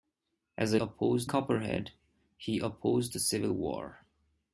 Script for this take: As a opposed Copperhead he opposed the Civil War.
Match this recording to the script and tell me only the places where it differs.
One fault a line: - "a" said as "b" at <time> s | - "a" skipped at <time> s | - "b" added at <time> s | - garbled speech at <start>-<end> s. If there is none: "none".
none